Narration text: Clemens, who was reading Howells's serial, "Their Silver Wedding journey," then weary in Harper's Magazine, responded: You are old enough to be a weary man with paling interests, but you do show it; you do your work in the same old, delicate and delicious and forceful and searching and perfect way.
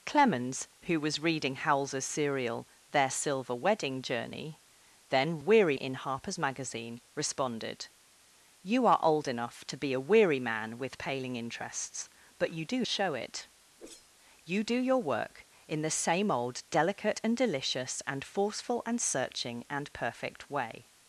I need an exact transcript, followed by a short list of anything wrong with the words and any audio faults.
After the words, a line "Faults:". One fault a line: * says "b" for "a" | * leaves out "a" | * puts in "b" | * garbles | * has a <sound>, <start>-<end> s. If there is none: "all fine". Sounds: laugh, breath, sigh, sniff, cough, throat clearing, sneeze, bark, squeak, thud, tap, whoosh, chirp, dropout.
Clemens, who was reading Howells's serial, "Their Silver Wedding journey," then weary in Harper's Magazine, responded: You are old enough to be a weary man with paling interests, but you do show it; you do your work in the same old, delicate and delicious and forceful and searching and perfect way.
Faults:
* has a whoosh, 13.8-14.1 s